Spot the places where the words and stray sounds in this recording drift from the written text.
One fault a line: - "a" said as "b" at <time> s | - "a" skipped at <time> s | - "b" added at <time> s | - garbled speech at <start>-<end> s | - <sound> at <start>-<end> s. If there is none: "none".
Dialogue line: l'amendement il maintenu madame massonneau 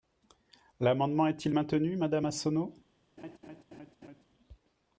- "est" added at 1.3 s
- laugh at 3.2-4.2 s